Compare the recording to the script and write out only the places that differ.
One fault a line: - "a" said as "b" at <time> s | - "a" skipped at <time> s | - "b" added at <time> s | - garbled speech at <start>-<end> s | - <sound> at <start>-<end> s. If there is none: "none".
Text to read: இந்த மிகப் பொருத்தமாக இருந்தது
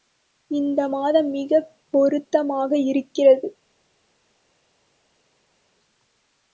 - "மாதம்" added at 0.9 s
- "இருந்தது" said as "இருக்கிறது" at 2.9 s